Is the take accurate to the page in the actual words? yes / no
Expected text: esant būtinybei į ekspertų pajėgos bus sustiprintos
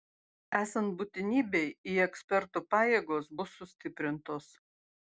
yes